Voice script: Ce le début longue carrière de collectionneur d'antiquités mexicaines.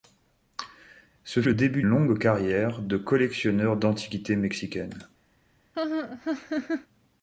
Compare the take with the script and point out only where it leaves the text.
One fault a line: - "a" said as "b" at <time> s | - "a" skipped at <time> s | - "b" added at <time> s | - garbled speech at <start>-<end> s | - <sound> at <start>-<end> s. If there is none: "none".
- laugh at 5.7-6.9 s